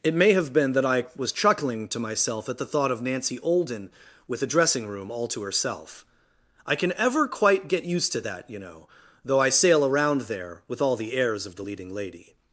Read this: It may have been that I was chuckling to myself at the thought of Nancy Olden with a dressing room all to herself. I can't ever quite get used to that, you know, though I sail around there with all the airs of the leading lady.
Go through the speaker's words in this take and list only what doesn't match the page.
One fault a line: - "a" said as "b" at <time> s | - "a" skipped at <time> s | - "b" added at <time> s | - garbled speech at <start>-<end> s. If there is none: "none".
- "can't" said as "can" at 6.8 s